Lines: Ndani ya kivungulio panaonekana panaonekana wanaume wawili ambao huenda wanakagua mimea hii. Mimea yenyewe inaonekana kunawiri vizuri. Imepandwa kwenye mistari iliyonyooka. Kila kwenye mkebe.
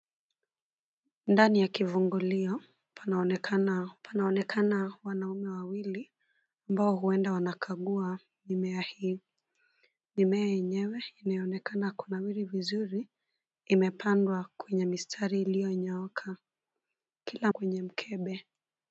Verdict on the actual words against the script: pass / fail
pass